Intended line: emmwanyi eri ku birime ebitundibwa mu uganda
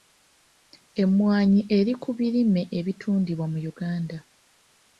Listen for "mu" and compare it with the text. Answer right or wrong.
right